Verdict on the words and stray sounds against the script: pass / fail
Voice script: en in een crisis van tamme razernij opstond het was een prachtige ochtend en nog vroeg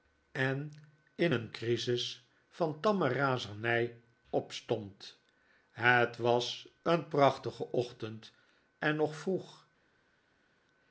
pass